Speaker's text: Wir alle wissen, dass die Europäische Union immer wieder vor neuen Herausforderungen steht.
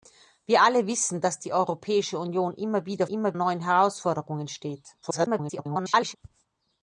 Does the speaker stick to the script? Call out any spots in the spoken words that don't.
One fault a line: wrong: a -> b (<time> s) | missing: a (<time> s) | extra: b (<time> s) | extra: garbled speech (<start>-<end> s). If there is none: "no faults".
wrong: vor -> immer (3.1 s)
extra: garbled speech (5.0-6.2 s)